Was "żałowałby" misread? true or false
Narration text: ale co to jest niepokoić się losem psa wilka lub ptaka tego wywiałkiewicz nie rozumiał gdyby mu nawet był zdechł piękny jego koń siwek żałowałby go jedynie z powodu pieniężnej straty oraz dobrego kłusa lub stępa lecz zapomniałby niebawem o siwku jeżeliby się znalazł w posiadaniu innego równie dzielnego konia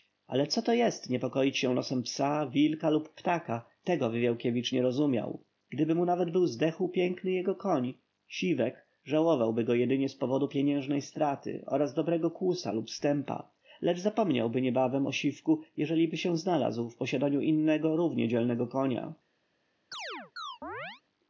false